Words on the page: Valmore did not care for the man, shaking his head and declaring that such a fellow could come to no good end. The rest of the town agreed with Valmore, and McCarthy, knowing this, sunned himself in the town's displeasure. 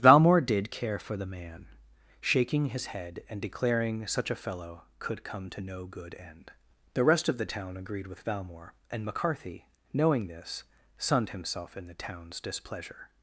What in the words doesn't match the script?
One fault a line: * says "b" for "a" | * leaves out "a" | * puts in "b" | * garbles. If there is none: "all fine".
* leaves out "not"
* leaves out "that"